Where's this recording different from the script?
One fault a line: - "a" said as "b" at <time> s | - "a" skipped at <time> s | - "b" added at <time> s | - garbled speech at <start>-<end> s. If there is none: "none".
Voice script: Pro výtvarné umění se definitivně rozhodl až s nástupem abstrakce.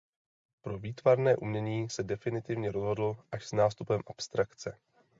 none